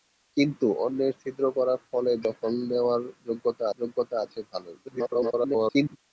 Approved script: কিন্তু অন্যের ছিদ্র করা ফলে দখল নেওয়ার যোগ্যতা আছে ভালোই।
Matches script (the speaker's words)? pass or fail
fail